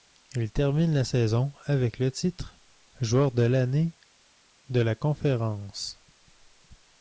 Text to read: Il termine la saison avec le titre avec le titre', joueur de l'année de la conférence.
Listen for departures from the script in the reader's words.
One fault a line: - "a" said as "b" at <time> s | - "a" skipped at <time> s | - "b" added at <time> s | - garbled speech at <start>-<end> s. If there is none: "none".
- "avec le titre" skipped at 2.6 s